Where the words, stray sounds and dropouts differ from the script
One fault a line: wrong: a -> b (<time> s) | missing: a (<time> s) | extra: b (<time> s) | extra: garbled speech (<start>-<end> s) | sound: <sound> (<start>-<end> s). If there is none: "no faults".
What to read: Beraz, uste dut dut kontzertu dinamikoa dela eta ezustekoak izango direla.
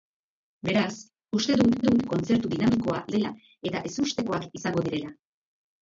no faults